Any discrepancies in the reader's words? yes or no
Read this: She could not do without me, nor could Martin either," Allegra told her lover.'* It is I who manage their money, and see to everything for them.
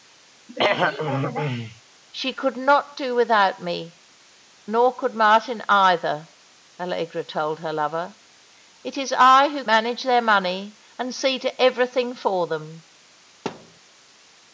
no